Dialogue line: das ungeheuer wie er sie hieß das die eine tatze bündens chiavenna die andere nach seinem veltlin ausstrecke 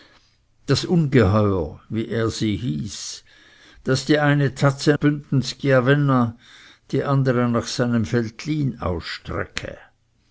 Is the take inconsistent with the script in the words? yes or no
no